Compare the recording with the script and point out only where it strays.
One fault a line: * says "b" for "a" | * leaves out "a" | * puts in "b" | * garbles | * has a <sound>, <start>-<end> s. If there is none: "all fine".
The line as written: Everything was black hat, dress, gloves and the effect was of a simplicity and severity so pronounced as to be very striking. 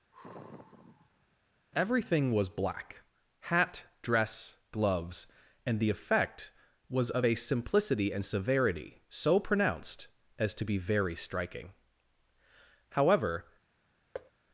* has a sigh, 0.1-1.4 s
* puts in "However"
* has a thud, 14.1-14.3 s